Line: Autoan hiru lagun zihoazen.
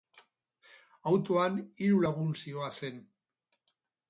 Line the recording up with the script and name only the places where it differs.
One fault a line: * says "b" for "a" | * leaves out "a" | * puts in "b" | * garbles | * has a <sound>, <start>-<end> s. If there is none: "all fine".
all fine